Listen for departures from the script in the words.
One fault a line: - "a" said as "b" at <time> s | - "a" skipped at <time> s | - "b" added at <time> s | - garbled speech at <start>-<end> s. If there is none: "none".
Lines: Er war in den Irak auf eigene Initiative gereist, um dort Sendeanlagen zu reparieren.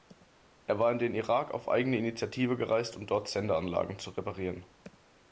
none